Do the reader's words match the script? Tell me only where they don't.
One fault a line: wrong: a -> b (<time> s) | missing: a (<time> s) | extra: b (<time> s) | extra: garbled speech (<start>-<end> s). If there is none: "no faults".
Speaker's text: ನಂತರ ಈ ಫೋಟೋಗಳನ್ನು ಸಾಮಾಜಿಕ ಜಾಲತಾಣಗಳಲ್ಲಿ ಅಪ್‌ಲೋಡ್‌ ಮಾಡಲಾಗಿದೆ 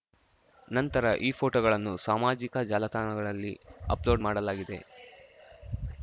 no faults